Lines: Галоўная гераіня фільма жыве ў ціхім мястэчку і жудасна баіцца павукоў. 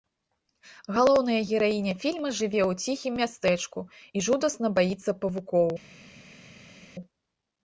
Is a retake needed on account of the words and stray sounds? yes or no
no